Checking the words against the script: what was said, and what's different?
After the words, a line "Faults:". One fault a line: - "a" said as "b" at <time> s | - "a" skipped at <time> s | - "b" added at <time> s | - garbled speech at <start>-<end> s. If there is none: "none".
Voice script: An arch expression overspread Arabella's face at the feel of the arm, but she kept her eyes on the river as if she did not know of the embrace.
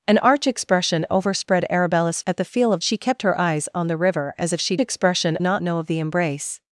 An arch expression overspread Arabella's at the feel of she kept her eyes on the river as if she expression not know of the embrace.
Faults:
- "face" skipped at 2.2 s
- "the arm but" skipped at 2.8 s
- "did" said as "expression" at 4.8 s